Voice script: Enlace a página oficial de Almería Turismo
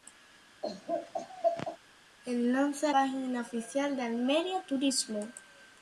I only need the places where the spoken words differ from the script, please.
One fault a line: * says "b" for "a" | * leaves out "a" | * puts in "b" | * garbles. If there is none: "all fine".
all fine